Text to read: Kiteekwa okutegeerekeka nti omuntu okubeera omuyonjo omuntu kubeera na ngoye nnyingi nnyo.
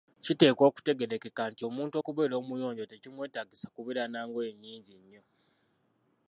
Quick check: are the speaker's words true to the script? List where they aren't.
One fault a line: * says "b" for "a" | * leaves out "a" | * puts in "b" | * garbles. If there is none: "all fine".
* says "tekimwetaagisa" for "omuntu"